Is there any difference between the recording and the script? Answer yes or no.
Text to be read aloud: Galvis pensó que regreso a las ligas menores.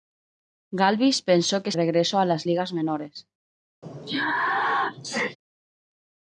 no